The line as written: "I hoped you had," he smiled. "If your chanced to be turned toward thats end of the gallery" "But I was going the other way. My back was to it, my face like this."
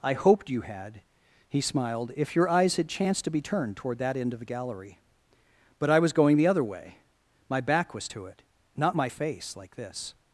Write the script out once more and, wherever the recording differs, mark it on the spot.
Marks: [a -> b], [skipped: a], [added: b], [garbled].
"I hoped you had," he smiled. "If your [added: eyes had] chanced to be turned toward [thats -> that] end of the gallery" "But I was going the other way. My back was to it, [added: not] my face like this."